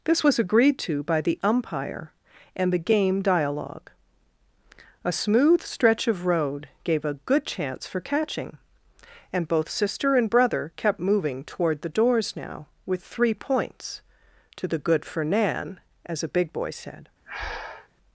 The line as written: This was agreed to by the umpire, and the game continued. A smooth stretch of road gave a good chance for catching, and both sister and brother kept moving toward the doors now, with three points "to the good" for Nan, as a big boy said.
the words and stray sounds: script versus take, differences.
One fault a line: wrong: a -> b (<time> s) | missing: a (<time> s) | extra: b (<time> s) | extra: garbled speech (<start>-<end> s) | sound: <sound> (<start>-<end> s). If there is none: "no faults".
wrong: continued -> dialogue (3.2 s)
sound: breath (17.2-17.9 s)